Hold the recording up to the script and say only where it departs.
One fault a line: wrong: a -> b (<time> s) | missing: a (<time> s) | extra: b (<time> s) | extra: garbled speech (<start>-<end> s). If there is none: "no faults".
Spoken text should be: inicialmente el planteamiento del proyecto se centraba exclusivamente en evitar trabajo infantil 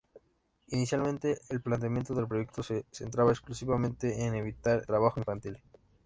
no faults